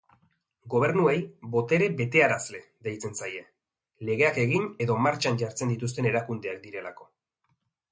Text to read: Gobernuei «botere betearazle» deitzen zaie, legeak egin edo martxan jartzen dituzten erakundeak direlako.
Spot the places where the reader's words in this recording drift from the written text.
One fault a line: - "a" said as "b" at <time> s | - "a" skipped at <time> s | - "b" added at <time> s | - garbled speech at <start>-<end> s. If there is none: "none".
none